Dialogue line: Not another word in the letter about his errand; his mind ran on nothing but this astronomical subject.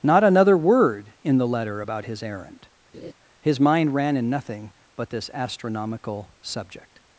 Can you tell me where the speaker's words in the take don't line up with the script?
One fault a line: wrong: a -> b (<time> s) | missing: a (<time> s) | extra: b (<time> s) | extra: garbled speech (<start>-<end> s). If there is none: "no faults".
wrong: on -> in (4.2 s)